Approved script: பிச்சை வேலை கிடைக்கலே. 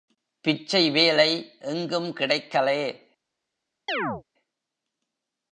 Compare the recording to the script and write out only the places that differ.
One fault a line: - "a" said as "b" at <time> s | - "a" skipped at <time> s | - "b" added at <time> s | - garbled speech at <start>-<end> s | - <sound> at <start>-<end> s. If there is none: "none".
- "எங்கும்" added at 1.6 s
- chirp at 3.9-4.2 s